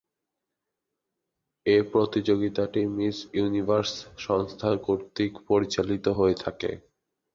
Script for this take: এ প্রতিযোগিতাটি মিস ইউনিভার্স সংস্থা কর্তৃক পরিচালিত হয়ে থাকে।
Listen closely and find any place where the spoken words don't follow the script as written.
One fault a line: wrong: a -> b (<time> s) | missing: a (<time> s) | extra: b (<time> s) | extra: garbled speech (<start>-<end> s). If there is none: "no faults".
no faults